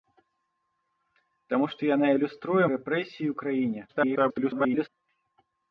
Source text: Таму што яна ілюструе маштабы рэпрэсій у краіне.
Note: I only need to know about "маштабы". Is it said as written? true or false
false